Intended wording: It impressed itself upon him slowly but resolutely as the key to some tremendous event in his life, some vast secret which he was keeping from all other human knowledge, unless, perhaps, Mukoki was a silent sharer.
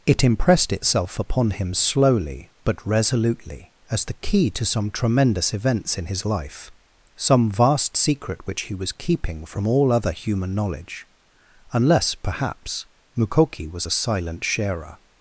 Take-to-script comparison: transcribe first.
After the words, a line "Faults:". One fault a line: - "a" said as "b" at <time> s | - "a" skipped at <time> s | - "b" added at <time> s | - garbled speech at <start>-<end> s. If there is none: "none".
It impressed itself upon him slowly but resolutely as the key to some tremendous events in his life, some vast secret which he was keeping from all other human knowledge, unless, perhaps, Mukoki was a silent sharer.
Faults:
- "event" said as "events" at 5.5 s